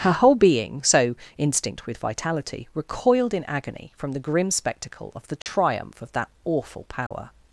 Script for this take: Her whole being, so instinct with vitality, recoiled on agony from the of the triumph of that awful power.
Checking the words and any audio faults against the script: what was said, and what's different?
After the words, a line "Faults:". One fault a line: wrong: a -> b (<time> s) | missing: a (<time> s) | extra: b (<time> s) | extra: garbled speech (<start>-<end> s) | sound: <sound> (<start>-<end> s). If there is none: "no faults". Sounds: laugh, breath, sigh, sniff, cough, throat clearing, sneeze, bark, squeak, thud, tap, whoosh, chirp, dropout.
Her whole being, so instinct with vitality, recoiled in agony from the grim spectacle of the triumph of that awful power.
Faults:
wrong: on -> in (3.4 s)
extra: grim spectacle (4.2 s)
sound: dropout (5.4-5.5 s)
sound: dropout (7.1-7.1 s)